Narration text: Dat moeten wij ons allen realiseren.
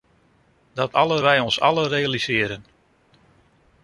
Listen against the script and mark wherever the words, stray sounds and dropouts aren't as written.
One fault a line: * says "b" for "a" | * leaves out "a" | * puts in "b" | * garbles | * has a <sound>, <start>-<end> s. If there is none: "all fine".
* says "allen" for "moeten"